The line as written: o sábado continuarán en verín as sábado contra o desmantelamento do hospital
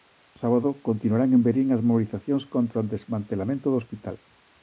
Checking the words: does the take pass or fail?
fail